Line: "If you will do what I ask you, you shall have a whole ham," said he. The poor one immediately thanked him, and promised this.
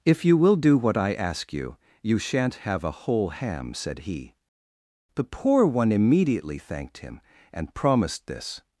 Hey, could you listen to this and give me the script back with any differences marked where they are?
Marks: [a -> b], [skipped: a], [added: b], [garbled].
"If you will do what I ask you, you [shall -> shan't] have a whole ham," said he. The poor one immediately thanked him, and promised this.